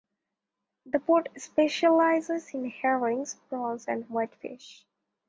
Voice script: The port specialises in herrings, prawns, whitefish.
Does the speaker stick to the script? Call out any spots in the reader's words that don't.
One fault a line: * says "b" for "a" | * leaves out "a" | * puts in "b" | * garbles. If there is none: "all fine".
* puts in "and"